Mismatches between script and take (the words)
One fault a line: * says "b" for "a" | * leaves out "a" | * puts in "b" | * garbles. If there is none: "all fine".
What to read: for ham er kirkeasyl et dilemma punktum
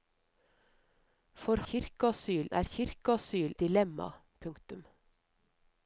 * says "kirkeasyl" for "ham"
* leaves out "et"